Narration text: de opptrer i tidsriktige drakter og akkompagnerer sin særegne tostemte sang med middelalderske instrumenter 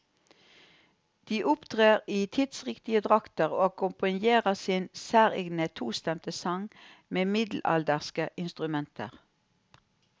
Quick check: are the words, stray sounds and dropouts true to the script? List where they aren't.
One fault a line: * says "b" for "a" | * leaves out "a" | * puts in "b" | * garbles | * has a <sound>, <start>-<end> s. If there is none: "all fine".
all fine